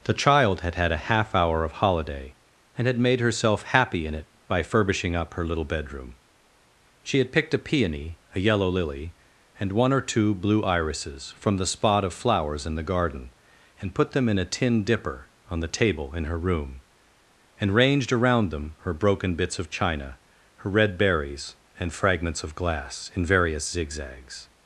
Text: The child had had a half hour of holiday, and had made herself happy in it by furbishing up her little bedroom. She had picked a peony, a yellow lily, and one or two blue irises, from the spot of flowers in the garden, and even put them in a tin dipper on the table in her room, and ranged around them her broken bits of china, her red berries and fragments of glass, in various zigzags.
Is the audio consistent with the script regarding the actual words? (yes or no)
no